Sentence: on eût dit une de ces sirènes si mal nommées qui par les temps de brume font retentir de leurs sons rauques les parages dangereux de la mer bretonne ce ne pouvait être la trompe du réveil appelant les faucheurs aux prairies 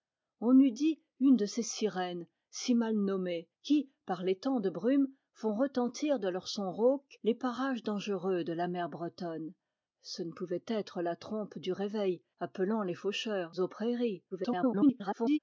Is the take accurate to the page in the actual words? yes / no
no